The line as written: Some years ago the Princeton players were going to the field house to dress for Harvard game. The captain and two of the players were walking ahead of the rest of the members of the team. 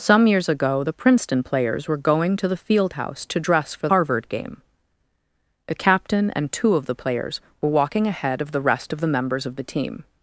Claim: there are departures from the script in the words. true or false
false